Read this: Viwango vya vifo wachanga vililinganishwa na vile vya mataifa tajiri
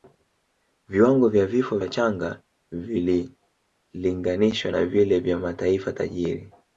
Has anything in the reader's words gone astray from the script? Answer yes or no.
no